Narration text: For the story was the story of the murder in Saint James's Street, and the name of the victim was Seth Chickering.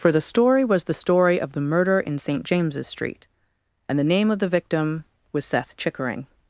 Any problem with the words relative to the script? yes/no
no